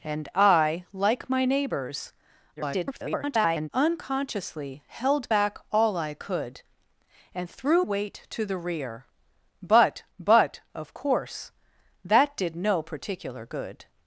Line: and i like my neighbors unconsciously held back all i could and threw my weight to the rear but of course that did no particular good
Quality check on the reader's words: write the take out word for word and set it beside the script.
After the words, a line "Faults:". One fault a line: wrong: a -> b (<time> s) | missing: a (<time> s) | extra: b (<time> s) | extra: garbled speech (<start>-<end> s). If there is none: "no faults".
and i like my neighbors [garbled] unconsciously held back all i could and threw weight to the rear but but of course that did no particular good
Faults:
extra: garbled speech (2.6-3.7 s)
missing: my (7.9 s)
extra: but (10.2 s)